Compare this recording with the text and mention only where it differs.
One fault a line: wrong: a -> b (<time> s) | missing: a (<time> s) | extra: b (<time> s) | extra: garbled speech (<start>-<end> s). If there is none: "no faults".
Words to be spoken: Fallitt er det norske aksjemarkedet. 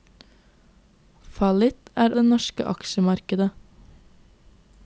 no faults